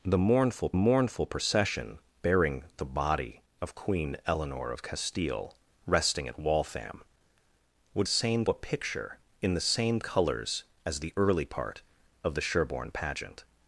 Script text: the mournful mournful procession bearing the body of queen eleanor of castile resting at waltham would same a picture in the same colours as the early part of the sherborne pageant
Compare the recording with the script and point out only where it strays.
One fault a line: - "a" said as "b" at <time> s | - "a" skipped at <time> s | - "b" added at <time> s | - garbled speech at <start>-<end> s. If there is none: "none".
none